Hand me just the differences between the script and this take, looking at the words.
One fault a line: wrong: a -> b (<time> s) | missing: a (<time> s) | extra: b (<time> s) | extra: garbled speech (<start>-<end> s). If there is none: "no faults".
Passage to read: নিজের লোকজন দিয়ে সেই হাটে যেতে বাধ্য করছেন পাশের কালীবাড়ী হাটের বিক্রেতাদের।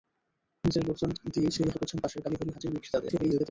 missing: হাটে যেতে বাধ্য (1.7 s)
extra: garbled speech (3.1-3.5 s)